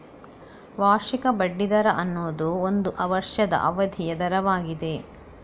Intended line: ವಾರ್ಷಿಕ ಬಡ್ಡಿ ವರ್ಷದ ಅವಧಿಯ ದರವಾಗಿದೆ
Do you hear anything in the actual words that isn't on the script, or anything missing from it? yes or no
yes